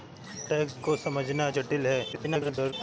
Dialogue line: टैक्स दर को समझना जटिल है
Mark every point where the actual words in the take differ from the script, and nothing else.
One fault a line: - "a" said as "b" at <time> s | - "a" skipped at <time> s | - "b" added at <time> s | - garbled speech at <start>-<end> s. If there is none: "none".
- "दर" skipped at 0.8 s
- garbled speech at 2.1-2.7 s